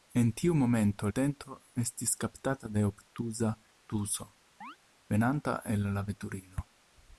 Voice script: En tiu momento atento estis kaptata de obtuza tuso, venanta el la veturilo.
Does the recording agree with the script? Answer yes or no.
yes